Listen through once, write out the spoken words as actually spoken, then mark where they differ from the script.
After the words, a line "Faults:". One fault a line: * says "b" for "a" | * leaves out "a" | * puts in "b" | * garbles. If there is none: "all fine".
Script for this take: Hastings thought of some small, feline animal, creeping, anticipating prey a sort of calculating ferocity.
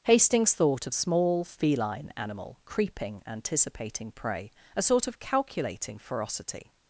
Hastings thought of small, feline animal, creeping, anticipating prey a sort of calculating ferocity.
Faults:
* leaves out "some"